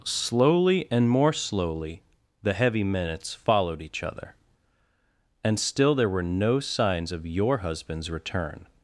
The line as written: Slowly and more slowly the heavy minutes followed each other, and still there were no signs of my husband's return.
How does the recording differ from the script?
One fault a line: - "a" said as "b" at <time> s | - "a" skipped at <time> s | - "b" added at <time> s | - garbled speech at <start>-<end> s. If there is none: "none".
- "my" said as "your" at 7.3 s